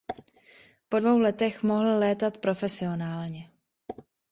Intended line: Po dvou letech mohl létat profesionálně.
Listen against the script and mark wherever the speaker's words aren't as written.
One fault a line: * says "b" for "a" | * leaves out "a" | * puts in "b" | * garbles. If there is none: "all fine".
all fine